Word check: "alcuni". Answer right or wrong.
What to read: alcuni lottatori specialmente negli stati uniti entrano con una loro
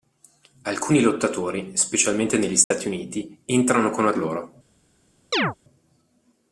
right